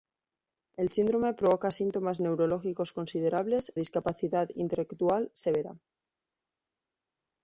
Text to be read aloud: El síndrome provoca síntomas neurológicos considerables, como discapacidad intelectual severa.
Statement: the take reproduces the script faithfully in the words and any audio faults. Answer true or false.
false